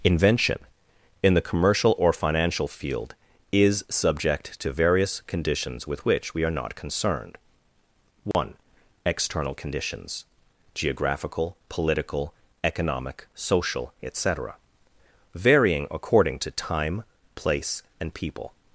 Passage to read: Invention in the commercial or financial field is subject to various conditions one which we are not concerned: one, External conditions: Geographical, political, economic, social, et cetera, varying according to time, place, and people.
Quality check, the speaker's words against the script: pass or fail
fail